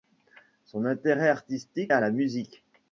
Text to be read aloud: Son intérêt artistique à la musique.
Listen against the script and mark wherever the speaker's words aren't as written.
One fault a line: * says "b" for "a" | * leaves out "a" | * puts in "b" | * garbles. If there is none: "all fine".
all fine